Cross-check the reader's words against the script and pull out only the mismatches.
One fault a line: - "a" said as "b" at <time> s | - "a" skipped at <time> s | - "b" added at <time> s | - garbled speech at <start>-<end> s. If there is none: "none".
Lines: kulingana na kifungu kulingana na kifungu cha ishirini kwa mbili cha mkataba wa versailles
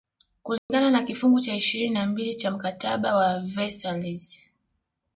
- "kulingana na kifungu" skipped at 1.4 s
- "kwa" said as "na" at 1.9 s